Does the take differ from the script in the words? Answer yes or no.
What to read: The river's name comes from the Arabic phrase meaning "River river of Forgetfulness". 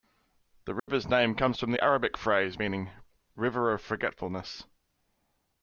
yes